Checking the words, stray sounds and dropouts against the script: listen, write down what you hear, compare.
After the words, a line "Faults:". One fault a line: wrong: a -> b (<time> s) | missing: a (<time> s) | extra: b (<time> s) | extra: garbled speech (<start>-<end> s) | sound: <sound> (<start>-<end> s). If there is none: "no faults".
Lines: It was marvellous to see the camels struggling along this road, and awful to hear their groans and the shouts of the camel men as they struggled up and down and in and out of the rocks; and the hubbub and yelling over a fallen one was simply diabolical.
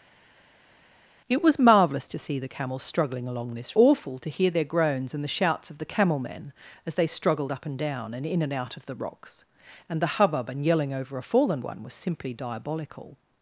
It was marvellous to see the camels struggling along this awful to hear their groans and the shouts of the camel men as they struggled up and down and in and out of the rocks; and the hubbub and yelling over a fallen one was simply diabolical.
Faults:
missing: road and (3.8 s)